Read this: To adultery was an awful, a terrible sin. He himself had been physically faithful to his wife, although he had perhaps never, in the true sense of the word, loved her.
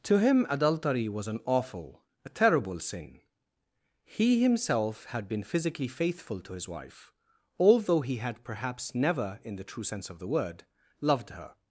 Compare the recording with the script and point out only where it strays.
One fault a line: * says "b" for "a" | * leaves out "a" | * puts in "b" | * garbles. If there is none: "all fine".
* puts in "him"